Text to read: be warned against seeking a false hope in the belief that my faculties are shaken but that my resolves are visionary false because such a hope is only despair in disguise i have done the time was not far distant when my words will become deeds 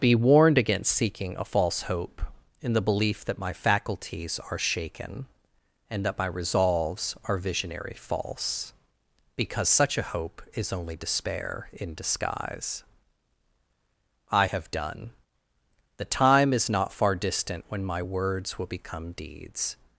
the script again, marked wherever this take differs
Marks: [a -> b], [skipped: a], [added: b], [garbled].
be warned against seeking a false hope in the belief that my faculties are shaken [but -> and] that my resolves are visionary false because such a hope is only despair in disguise i have done the time [was -> is] not far distant when my words will become deeds